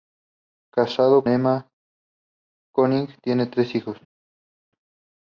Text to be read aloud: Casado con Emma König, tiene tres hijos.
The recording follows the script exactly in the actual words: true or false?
false